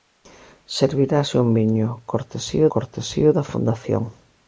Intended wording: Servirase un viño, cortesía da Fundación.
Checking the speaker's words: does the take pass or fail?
fail